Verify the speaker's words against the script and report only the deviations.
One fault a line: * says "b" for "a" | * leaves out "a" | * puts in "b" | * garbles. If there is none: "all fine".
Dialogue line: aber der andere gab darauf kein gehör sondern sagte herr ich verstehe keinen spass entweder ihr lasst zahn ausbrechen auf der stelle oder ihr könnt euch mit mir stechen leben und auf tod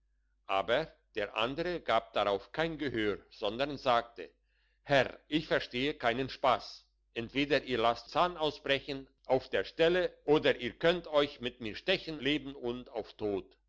all fine